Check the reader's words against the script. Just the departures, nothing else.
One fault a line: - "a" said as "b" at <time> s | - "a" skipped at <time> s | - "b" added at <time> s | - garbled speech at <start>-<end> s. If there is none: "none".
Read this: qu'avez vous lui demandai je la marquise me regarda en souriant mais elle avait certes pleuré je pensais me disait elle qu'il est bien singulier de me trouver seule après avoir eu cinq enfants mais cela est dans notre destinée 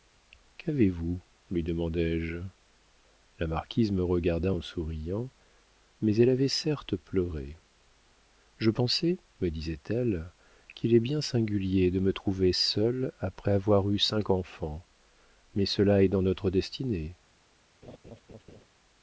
none